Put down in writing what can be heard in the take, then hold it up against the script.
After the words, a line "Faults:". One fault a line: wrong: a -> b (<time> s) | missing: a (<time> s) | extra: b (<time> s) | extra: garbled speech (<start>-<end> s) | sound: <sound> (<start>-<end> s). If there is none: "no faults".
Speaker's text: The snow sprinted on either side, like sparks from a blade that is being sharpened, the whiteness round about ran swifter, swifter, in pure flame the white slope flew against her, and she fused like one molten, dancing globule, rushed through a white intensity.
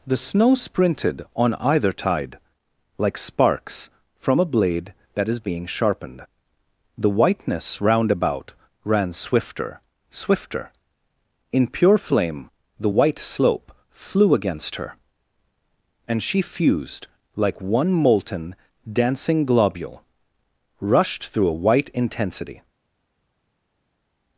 The snow sprinted on either tide, like sparks from a blade that is being sharpened, the whiteness round about ran swifter, swifter, in pure flame the white slope flew against her, and she fused like one molten, dancing globule, rushed through a white intensity.
Faults:
wrong: side -> tide (1.9 s)